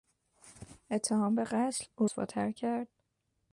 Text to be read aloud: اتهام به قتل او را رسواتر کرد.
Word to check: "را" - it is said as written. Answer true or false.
false